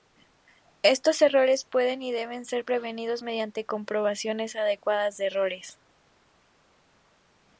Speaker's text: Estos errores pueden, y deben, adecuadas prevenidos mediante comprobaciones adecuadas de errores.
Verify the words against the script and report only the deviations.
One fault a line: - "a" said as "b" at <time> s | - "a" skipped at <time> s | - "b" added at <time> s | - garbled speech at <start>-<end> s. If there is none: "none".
- "adecuadas" said as "ser" at 2.5 s